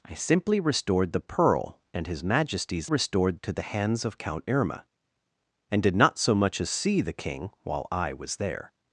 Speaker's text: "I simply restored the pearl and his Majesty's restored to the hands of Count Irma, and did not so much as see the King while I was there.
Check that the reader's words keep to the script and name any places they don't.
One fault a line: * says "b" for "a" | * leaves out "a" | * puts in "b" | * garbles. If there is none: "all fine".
all fine